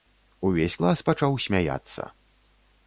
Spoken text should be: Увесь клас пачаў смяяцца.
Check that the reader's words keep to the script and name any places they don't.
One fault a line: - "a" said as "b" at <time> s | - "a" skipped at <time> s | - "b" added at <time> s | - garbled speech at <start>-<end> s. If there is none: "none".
none